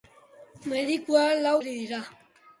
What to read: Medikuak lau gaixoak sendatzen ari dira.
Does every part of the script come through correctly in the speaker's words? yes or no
no